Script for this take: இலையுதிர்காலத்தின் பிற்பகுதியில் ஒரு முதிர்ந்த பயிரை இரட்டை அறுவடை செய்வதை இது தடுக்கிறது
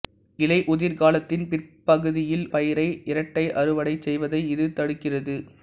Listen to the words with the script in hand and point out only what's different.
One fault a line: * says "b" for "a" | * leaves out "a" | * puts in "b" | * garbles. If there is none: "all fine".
* leaves out "ஒரு முதிர்ந்த"